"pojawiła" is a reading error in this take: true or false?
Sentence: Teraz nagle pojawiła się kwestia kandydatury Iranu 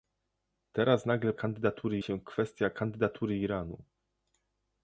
true